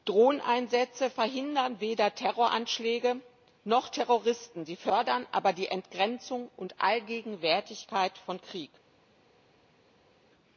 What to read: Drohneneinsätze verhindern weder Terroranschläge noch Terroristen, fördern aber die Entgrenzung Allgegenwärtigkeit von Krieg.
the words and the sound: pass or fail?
fail